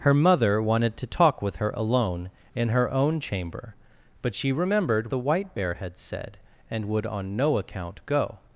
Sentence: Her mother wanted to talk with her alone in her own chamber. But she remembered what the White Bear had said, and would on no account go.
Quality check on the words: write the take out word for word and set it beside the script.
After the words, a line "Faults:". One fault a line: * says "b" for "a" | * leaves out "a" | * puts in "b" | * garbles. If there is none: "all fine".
Her mother wanted to talk with her alone in her own chamber. But she remembered the White Bear had said, and would on no account go.
Faults:
* leaves out "what"